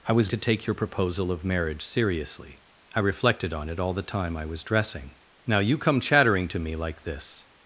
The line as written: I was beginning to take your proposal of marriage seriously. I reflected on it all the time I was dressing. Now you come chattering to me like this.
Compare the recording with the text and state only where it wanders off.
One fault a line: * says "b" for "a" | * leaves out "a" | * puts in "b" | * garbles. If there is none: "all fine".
* leaves out "beginning"